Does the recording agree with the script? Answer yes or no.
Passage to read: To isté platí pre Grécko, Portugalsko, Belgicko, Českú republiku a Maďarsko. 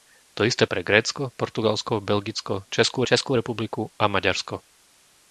no